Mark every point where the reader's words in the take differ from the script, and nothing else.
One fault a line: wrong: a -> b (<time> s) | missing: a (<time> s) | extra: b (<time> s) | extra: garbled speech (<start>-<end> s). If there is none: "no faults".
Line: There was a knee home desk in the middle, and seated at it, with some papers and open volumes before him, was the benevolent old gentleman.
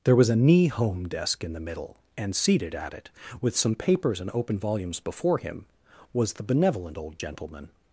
no faults